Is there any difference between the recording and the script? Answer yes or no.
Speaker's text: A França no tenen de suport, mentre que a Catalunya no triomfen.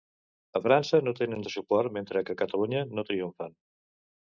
no